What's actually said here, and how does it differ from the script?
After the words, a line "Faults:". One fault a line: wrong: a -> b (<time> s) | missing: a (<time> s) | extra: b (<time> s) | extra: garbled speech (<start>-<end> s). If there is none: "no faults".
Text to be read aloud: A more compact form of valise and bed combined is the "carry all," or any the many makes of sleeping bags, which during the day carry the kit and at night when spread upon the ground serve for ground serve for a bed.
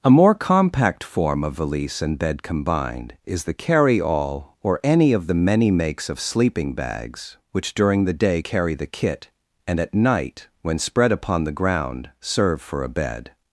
A more compact form of valise and bed combined is the "carry all," or any of the many makes of sleeping bags, which during the day carry the kit and at night when spread upon the ground serve for a bed.
Faults:
extra: of (5.1 s)
missing: ground serve for (12.8 s)